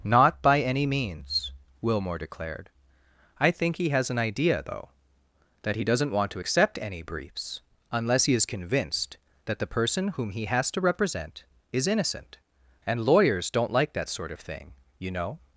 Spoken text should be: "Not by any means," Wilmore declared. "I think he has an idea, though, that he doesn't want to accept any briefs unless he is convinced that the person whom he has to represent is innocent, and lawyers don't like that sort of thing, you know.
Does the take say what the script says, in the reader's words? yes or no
yes